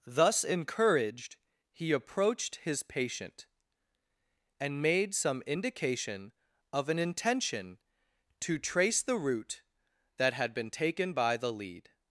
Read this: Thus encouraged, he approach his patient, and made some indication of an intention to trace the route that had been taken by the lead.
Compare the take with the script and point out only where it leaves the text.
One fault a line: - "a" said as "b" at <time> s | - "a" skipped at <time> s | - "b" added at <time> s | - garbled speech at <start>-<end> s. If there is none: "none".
- "approach" said as "approached" at 1.9 s